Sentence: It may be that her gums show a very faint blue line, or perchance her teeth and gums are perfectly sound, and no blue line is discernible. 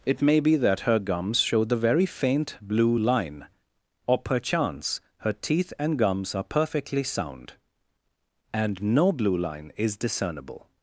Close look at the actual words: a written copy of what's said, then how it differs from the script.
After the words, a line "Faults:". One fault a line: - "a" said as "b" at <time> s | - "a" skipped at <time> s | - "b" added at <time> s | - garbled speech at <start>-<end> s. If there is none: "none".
It may be that her gums show the very faint blue line, or perchance her teeth and gums are perfectly sound, and no blue line is discernible.
Faults:
- "a" said as "the" at 1.6 s